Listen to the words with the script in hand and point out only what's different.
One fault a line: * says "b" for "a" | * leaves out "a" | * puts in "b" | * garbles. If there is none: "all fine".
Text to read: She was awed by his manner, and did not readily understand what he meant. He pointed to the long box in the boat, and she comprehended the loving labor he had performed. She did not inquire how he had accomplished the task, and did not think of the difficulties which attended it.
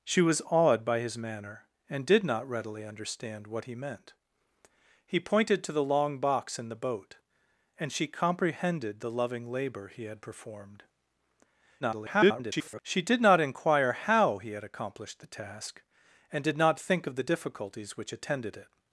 * garbles